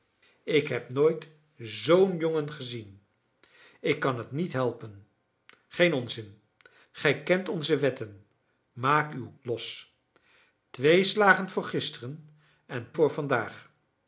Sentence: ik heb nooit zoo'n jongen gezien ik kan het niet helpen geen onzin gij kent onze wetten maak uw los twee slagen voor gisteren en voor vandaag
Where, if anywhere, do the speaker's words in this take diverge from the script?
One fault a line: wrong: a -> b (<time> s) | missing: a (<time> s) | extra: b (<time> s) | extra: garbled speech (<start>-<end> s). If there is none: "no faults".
no faults